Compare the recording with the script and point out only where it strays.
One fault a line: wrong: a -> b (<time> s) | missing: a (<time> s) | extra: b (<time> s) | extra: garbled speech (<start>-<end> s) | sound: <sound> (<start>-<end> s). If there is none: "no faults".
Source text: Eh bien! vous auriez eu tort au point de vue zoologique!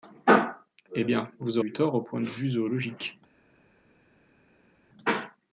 missing: auriez (1.6 s)